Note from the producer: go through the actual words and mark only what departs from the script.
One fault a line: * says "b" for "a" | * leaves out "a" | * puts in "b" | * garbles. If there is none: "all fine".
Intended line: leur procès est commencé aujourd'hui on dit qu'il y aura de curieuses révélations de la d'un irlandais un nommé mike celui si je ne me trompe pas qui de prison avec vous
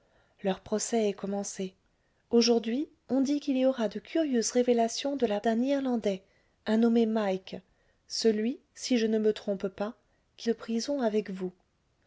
all fine